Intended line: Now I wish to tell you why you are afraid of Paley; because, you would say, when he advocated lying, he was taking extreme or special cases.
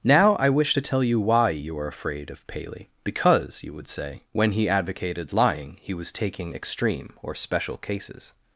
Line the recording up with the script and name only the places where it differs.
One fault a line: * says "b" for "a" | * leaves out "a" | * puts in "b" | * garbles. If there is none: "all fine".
all fine